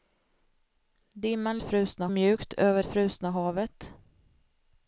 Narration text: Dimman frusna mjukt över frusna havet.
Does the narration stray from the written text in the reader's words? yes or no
no